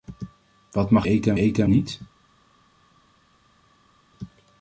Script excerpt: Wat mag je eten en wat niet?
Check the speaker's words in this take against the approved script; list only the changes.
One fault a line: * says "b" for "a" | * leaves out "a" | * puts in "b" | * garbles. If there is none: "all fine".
* leaves out "je"
* says "eten" for "wat"